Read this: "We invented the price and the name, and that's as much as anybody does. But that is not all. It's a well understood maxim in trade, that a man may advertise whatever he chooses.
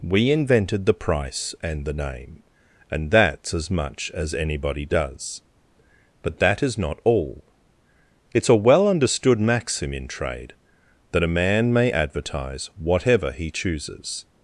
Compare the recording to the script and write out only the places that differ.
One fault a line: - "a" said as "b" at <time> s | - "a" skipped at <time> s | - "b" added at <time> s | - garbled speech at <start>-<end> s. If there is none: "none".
none